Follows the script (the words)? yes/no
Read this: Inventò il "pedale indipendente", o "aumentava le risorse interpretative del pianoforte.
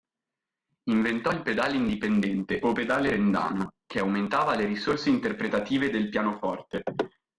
no